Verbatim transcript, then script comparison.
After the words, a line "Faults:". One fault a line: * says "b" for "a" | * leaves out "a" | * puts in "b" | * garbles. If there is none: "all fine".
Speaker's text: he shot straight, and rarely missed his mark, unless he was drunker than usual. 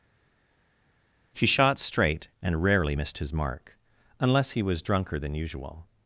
he shot straight, and rarely missed his mark, unless he was drunker than usual.
Faults:
all fine